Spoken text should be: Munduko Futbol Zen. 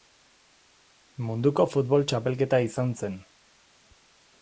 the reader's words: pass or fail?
fail